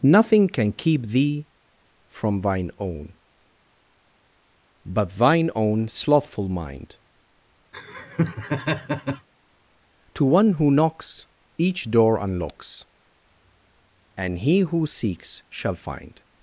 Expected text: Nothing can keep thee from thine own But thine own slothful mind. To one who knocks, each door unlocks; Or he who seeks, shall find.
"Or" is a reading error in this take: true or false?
true